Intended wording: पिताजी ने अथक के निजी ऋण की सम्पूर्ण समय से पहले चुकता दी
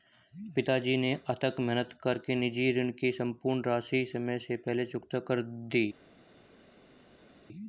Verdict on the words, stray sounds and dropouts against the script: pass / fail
fail